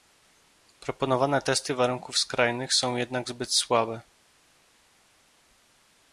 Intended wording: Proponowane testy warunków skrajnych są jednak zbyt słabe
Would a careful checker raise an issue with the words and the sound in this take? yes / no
no